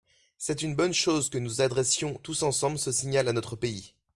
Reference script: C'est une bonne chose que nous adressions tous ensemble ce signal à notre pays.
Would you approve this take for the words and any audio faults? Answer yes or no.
yes